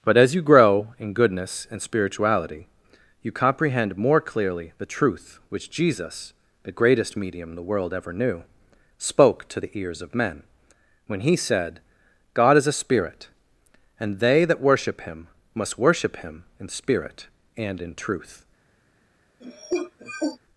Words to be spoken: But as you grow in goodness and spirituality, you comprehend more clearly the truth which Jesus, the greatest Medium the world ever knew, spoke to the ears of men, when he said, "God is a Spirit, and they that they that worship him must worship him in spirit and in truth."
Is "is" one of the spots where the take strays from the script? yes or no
no